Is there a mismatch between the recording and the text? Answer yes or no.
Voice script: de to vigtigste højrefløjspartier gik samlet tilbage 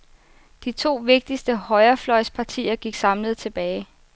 no